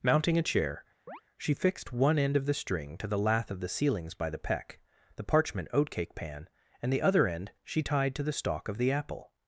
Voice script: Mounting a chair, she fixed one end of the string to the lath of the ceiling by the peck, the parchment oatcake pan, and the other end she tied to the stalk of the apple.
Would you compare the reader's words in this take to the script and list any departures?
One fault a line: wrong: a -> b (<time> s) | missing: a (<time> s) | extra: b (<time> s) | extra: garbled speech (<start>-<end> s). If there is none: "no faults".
wrong: ceiling -> ceilings (3.7 s)